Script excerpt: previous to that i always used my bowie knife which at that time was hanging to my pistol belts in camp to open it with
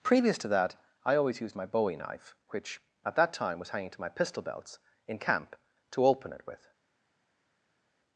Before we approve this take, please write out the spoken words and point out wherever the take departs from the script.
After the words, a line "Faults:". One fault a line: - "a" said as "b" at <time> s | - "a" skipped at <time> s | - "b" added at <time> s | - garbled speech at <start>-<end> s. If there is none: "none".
previous to that i always used my bowie knife which at that time was hanging to my pistol belts in camp to open it with
Faults:
none